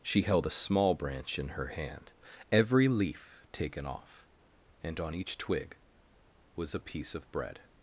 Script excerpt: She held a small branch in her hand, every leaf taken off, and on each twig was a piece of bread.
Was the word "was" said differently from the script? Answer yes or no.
no